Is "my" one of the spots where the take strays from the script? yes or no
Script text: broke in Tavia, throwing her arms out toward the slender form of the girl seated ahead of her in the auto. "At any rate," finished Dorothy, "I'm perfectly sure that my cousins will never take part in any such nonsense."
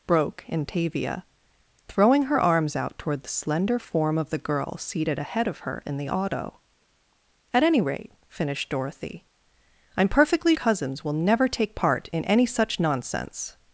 yes